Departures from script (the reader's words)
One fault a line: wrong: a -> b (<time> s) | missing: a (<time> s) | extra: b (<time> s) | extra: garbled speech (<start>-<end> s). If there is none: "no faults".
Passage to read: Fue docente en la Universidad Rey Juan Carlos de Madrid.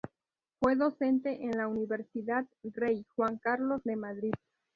no faults